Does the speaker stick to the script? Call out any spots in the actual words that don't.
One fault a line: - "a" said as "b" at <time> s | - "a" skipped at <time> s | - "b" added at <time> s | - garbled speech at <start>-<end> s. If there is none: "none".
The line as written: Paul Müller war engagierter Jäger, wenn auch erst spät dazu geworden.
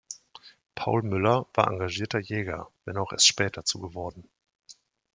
none